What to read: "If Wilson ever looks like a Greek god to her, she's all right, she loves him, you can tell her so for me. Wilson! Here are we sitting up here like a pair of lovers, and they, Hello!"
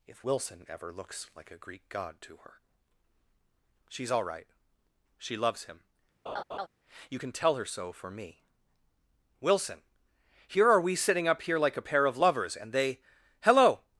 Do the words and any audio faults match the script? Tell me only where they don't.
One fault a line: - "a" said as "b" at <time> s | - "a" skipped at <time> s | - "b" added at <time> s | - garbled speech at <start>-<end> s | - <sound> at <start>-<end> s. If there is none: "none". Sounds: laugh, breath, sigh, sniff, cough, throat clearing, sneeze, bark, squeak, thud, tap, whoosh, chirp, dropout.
- laugh at 6.3-6.7 s